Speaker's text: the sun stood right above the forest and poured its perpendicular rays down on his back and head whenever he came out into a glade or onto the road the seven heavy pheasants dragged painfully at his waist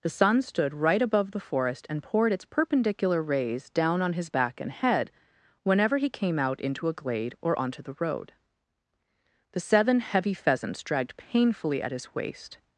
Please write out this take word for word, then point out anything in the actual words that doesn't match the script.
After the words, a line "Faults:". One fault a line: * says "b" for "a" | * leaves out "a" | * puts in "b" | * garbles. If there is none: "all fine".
the sun stood right above the forest and poured its perpendicular rays down on his back and head whenever he came out into a glade or onto the road the seven heavy pheasants dragged painfully at his waist
Faults:
all fine